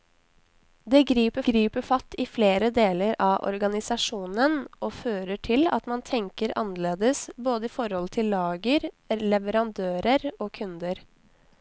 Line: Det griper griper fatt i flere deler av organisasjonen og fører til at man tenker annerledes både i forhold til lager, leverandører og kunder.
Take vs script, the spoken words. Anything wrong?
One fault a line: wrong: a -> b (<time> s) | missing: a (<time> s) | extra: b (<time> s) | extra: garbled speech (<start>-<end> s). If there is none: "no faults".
no faults